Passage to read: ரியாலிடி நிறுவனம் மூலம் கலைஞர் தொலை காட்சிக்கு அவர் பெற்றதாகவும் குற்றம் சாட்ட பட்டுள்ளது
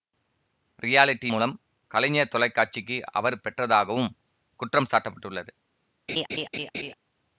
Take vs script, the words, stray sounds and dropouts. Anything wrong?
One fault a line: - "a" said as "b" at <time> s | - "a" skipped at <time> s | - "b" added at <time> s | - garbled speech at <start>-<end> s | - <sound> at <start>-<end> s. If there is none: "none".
- "நிறுவனம்" skipped at 1.3 s
- laugh at 6.1-6.9 s